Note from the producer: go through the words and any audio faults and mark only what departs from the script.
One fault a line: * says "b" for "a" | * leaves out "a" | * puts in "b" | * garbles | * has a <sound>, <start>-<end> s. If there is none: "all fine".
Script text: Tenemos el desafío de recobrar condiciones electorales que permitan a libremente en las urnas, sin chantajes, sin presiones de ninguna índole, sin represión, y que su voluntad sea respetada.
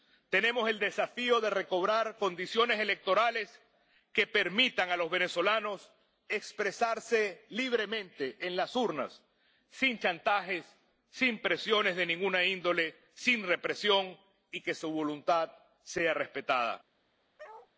* puts in "los venezolanos expresarse"
* has a bark, 17.4-17.7 s